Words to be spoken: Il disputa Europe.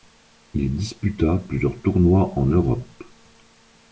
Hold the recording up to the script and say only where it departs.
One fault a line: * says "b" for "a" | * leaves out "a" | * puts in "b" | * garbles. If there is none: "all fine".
* puts in "plusieurs tournois en"